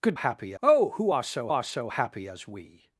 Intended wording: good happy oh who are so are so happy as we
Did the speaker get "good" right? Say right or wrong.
right